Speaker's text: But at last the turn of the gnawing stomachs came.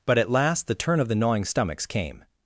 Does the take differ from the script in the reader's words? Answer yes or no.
no